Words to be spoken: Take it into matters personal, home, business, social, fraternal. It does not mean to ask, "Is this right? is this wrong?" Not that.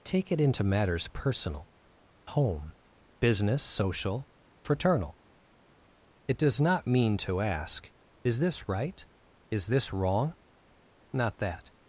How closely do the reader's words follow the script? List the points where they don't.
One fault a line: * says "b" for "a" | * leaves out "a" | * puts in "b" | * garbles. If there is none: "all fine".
all fine